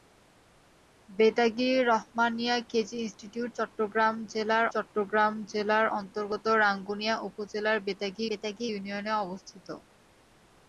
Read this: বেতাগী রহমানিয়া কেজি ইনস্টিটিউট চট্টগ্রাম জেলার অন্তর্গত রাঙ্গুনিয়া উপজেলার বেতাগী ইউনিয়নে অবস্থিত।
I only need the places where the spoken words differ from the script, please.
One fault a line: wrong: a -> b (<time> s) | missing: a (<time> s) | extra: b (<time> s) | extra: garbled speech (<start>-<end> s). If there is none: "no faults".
extra: চট্টগ্রাম জেলার (4.7 s)
extra: বেতাগী (8.3 s)